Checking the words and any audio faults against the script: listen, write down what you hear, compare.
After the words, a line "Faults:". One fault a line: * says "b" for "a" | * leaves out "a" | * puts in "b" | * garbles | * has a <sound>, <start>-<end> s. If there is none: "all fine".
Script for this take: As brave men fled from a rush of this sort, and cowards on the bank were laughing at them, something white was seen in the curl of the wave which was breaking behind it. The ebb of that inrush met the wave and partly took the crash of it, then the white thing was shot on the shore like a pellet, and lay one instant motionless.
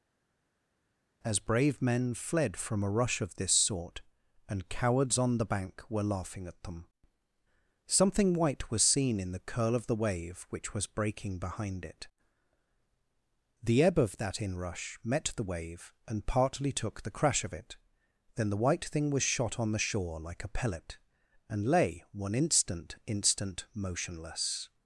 As brave men fled from a rush of this sort, and cowards on the bank were laughing at them, something white was seen in the curl of the wave which was breaking behind it. The ebb of that inrush met the wave and partly took the crash of it, then the white thing was shot on the shore like a pellet, and lay one instant instant motionless.
Faults:
* puts in "instant"